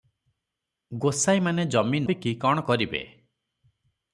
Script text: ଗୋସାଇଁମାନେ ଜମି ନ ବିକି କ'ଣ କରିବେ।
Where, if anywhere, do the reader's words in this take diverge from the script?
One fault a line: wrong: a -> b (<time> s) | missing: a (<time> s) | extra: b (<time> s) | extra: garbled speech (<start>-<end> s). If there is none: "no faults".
missing: ନ (2.0 s)